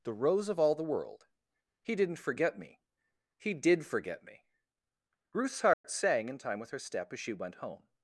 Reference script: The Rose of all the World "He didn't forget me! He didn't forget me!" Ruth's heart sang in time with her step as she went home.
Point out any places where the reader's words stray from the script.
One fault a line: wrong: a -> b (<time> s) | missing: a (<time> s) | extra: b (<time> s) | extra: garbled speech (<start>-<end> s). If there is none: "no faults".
wrong: didn't -> did (3.5 s)